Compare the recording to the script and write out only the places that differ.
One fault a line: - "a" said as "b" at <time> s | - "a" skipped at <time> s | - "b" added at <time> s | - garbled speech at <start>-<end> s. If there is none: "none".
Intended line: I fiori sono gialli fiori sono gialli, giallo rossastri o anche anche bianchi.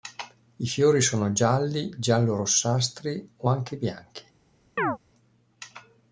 - "fiori sono gialli" skipped at 1.9 s
- "anche" skipped at 3.8 s